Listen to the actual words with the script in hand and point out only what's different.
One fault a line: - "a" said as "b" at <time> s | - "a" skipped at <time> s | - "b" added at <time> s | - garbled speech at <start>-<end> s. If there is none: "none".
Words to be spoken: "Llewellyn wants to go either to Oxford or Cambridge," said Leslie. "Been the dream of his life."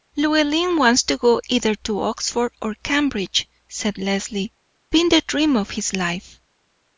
none